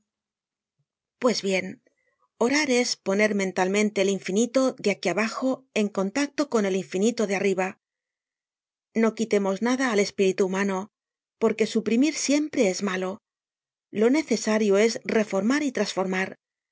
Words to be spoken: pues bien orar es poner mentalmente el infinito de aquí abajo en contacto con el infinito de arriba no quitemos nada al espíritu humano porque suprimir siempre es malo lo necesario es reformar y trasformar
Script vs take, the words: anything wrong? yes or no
no